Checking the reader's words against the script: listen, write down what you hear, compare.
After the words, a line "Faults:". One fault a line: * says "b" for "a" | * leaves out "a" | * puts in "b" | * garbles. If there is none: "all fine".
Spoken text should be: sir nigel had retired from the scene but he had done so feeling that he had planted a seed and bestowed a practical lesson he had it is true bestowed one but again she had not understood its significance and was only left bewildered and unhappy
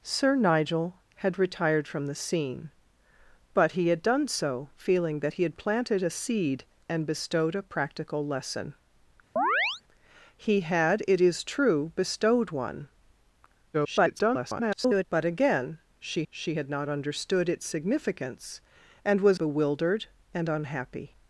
sir nigel had retired from the scene but he had done so feeling that he had planted a seed and bestowed a practical lesson he had it is true bestowed one [garbled] but again she she had not understood its significance and was bewildered and unhappy
Faults:
* garbles
* puts in "she"
* leaves out "only left"